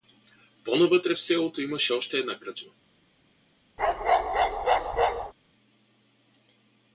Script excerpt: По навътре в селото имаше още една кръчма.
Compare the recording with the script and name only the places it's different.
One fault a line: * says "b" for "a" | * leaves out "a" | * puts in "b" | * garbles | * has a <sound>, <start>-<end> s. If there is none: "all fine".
* has a bark, 3.8-5.3 s